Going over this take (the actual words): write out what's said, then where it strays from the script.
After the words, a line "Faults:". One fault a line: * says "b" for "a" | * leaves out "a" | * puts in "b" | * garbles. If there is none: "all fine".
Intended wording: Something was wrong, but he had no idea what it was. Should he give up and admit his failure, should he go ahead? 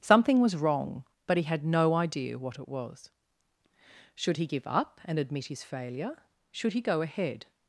Something was wrong, but he had no idea what it was. Should he give up and admit his failure, should he go ahead?
Faults:
all fine